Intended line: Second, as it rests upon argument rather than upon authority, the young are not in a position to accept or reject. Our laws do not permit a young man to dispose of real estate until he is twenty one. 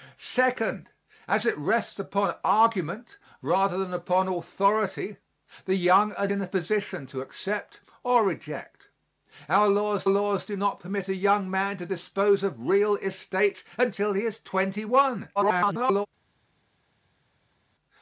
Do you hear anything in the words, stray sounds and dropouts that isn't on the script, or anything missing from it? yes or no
yes